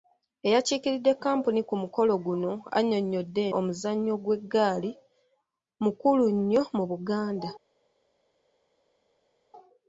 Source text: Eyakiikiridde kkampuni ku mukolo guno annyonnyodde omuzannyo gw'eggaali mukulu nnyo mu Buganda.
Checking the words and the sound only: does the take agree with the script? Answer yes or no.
yes